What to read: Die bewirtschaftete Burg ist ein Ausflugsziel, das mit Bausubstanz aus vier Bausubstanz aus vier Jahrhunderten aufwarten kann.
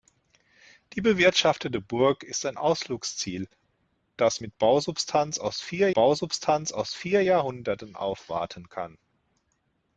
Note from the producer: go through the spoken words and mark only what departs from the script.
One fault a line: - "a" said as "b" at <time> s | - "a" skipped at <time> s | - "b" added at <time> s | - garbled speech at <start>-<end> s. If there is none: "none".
none